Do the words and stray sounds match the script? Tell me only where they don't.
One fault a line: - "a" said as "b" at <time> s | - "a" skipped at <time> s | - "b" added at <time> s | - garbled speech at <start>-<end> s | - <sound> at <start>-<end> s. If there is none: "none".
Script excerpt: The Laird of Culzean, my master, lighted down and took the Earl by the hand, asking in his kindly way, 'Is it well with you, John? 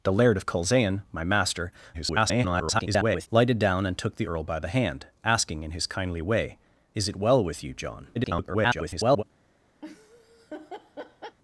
- garbled speech at 1.9-3.3 s
- garbled speech at 8.1-9.2 s
- laugh at 9.8-11.4 s